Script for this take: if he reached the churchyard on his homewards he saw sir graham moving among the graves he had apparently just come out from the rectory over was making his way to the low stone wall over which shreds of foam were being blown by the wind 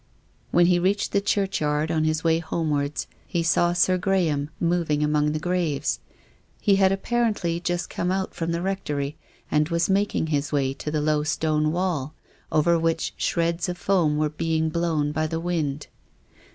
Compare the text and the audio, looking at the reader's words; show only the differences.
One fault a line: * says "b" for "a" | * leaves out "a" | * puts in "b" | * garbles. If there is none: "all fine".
* says "when" for "if"
* puts in "way"
* says "and" for "over"